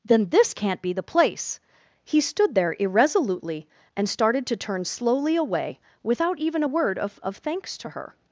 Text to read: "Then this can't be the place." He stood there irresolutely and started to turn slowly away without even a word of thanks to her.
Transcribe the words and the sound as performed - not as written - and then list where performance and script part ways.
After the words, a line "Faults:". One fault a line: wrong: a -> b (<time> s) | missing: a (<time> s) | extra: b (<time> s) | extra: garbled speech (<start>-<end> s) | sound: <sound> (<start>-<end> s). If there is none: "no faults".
"Then this can't be the place." He stood there irresolutely and started to turn slowly away without even a word of of thanks to her.
Faults:
extra: of (7.2 s)